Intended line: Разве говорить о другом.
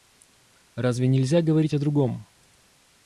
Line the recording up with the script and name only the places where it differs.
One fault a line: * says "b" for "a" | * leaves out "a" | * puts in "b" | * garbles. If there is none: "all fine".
* puts in "нельзя"